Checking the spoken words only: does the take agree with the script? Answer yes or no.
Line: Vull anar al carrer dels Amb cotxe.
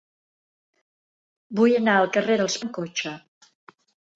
yes